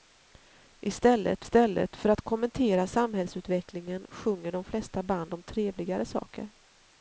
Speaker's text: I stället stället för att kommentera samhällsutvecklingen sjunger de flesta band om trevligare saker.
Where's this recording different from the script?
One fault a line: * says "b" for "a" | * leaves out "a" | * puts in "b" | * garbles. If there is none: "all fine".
all fine